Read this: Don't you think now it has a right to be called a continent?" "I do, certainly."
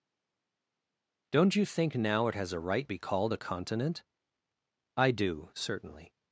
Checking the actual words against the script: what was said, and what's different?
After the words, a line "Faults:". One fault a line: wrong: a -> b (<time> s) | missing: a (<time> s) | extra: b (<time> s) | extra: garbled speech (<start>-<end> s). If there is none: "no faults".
Don't you think now it has a right be called a continent?" "I do, certainly."
Faults:
missing: to (2.9 s)